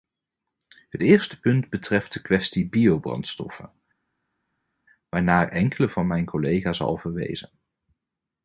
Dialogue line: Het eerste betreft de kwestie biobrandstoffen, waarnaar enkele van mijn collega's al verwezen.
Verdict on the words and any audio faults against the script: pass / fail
fail